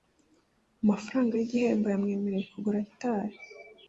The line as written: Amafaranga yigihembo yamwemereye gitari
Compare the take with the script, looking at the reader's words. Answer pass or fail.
fail